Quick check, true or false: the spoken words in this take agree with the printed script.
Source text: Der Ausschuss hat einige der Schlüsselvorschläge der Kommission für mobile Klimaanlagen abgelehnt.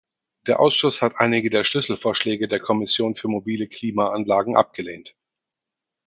true